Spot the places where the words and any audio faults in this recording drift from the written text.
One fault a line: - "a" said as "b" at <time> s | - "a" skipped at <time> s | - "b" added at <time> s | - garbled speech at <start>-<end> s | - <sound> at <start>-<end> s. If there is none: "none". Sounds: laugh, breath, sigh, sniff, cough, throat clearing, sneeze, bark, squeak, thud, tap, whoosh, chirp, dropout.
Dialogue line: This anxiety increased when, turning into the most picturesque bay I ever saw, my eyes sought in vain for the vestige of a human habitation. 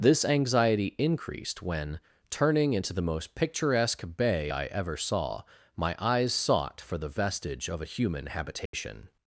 - "in vain" skipped at 6.8 s
- dropout at 8.7-8.7 s